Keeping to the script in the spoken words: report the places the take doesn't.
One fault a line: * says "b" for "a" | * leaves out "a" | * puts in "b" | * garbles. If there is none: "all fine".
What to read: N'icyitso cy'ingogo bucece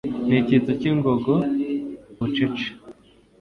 all fine